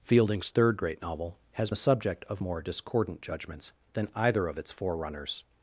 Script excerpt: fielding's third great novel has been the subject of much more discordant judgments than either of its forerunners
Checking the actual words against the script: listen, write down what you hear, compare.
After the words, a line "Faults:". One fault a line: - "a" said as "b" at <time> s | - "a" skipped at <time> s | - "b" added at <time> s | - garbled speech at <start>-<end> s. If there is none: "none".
fielding's third great novel has the subject of more discordant judgments than either of its forerunners
Faults:
- "been" skipped at 1.7 s
- "much" skipped at 2.4 s